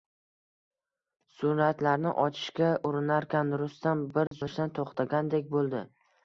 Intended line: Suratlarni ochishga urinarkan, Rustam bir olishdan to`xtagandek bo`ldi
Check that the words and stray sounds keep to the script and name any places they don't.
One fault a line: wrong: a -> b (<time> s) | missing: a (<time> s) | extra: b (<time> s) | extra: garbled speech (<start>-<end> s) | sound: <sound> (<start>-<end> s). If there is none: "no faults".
sound: dropout (4.3-4.3 s)